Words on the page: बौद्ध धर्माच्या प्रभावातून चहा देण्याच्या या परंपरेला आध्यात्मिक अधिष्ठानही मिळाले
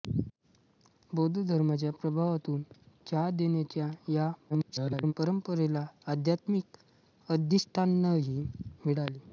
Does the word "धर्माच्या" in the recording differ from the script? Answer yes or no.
no